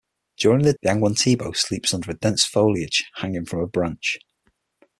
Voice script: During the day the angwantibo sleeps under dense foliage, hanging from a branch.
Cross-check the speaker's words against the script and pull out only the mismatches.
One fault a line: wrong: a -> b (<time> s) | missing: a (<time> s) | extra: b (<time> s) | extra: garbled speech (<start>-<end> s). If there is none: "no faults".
missing: day (0.7 s)